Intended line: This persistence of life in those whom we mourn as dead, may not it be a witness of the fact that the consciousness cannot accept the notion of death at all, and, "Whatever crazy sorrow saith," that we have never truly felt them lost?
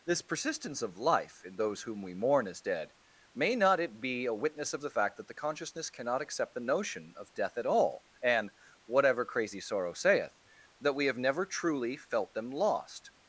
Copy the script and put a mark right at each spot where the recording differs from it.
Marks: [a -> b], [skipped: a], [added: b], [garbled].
This persistence of life in those whom we mourn as dead, may not it be a witness of the fact that the consciousness cannot accept the notion of death at all, and, "Whatever crazy sorrow saith," that we have never truly felt them lost?